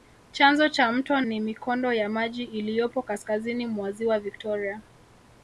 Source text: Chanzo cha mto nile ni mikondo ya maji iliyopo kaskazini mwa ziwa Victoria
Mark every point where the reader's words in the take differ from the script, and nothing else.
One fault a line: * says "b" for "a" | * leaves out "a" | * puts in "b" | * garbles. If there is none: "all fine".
* leaves out "nile"